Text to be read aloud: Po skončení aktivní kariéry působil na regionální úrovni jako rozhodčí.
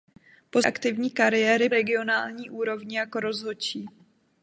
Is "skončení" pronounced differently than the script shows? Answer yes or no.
yes